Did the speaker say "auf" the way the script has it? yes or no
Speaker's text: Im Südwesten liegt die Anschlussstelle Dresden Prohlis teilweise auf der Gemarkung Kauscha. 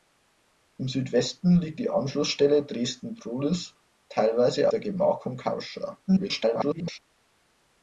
no